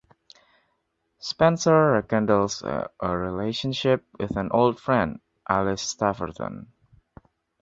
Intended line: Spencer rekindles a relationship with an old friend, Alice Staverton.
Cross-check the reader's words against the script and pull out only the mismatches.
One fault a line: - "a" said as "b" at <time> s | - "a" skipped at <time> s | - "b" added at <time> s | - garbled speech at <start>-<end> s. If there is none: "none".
none